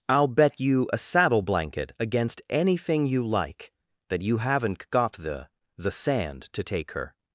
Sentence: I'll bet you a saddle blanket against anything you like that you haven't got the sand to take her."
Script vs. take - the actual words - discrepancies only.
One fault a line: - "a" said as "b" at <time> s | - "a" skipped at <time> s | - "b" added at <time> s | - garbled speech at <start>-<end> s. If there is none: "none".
- "the" added at 5.8 s